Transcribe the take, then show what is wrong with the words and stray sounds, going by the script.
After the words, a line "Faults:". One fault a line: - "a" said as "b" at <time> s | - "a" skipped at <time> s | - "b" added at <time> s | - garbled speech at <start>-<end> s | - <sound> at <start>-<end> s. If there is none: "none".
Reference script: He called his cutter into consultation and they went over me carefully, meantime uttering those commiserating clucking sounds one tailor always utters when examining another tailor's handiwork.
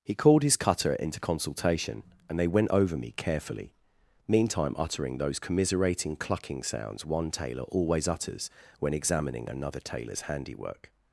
He called his cutter into consultation and they went over me carefully, meantime uttering those commiserating clucking sounds one tailor always utters when examining another tailor's handiwork.
Faults:
none